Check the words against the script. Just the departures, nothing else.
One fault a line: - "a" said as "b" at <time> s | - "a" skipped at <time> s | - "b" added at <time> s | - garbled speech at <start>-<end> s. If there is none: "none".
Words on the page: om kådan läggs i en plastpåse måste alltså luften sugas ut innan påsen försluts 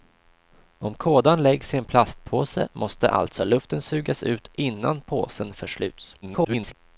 - garbled speech at 6.2-6.7 s